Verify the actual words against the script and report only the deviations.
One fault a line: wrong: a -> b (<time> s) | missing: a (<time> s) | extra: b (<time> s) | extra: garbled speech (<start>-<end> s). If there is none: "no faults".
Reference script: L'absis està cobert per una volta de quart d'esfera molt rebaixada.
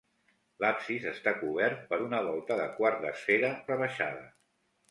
missing: molt (3.5 s)